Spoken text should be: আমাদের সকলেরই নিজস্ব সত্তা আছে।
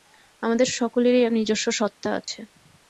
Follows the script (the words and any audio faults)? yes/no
no